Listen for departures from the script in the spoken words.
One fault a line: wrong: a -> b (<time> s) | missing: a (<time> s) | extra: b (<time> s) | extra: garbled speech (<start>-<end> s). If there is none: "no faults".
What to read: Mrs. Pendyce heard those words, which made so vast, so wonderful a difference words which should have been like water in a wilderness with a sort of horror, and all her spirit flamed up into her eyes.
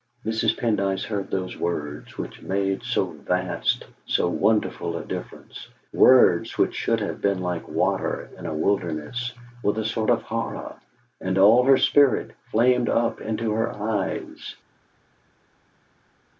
no faults